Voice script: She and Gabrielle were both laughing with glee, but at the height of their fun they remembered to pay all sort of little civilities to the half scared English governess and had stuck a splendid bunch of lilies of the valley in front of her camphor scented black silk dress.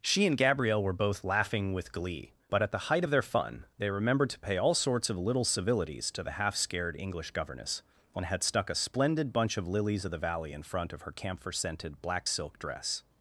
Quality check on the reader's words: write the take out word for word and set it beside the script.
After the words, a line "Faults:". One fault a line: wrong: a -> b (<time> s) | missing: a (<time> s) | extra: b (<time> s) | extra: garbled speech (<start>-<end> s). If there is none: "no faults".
She and Gabrielle were both laughing with glee, but at the height of their fun they remembered to pay all sorts of little civilities to the half scared English governess and had stuck a splendid bunch of lilies of the valley in front of her camphor scented black silk dress.
Faults:
wrong: sort -> sorts (4.7 s)